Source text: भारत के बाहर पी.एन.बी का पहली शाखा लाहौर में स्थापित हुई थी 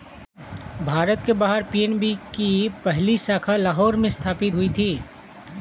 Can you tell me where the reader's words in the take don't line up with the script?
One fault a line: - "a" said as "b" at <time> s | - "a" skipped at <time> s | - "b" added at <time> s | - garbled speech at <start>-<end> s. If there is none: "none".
- "का" said as "की" at 2.4 s